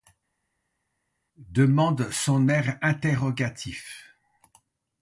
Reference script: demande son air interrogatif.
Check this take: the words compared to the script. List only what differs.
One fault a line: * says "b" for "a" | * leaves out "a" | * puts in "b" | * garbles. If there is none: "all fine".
all fine